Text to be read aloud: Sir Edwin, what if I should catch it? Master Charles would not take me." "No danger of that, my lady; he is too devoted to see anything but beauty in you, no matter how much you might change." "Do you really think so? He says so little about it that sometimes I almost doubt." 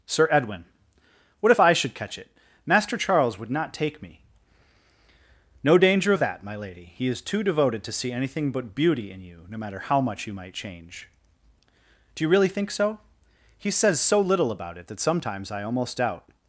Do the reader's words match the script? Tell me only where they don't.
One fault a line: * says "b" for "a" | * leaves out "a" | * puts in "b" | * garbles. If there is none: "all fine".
all fine